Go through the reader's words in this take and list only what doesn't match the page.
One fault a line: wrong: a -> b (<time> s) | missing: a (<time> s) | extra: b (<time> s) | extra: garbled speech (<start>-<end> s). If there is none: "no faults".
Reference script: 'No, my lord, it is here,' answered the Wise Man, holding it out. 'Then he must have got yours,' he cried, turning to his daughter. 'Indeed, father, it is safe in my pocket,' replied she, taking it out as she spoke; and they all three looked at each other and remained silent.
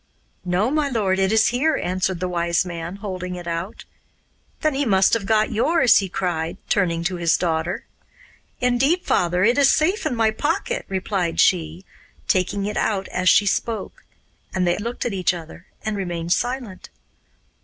missing: all three (14.8 s)